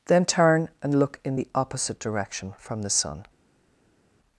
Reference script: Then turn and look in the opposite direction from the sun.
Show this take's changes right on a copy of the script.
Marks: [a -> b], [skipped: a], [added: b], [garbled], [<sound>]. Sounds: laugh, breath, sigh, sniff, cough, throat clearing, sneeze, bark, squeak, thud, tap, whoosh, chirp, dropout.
Then turn and look in the opposite direction from the sun.